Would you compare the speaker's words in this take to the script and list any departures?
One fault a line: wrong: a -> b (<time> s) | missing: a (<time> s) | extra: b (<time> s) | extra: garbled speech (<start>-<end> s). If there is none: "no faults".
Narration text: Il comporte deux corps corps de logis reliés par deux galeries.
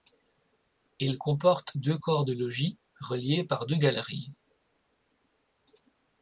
missing: corps (2.3 s)